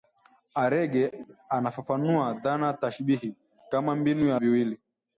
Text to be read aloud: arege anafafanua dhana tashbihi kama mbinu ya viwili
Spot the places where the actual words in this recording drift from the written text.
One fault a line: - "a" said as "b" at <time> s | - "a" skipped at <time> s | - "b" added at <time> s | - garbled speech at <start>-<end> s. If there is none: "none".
none